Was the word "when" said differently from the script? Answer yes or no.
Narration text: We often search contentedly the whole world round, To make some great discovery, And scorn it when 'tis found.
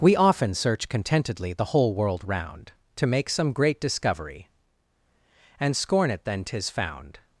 yes